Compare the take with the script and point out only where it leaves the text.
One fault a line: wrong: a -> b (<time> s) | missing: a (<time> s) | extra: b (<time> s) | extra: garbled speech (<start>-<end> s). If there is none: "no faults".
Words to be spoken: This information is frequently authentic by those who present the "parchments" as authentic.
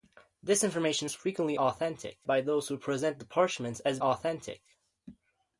no faults